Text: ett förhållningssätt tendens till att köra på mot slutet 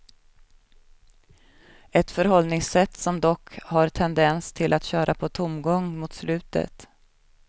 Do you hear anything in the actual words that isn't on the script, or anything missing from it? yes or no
yes